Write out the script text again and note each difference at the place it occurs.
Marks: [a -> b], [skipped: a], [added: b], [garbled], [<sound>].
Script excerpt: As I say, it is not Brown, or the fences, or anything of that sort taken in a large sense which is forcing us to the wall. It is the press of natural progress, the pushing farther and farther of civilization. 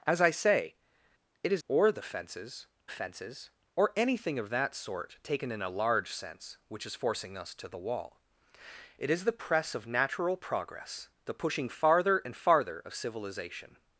As I say, it is [skipped: not Brown,] or the fences, [added: fences] or anything of that sort taken in a large sense which is forcing us to the wall. It is the press of natural progress, the pushing farther and farther of civilization.